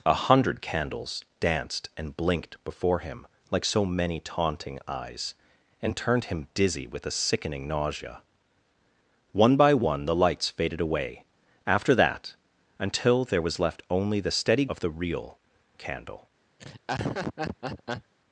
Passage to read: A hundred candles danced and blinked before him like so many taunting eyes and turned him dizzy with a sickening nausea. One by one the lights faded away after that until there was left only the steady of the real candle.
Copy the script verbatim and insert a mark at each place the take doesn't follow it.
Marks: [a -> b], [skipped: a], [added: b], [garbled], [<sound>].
A hundred candles danced and blinked before him like so many taunting eyes and turned him dizzy with a sickening nausea. One by one the lights faded away after that until there was left only the steady of the real candle. [laugh]